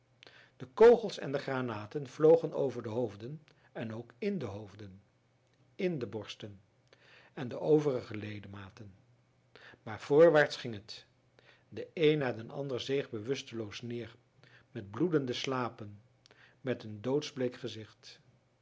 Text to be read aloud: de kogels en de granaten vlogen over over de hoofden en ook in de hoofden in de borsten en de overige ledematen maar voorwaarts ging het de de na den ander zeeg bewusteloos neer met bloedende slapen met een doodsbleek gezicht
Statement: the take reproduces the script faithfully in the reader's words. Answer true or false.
false